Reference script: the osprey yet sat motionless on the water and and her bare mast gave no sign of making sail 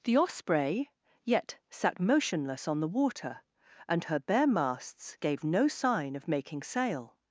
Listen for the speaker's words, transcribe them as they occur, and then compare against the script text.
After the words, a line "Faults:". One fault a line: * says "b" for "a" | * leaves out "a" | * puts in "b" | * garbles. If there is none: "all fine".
the osprey yet sat motionless on the water and her bare masts gave no sign of making sail
Faults:
* leaves out "and"
* says "masts" for "mast"